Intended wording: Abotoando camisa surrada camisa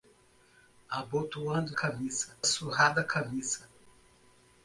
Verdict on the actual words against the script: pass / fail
pass